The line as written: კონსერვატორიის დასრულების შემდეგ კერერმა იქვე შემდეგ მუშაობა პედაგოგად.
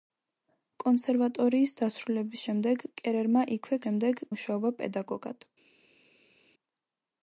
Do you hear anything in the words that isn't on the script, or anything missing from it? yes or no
no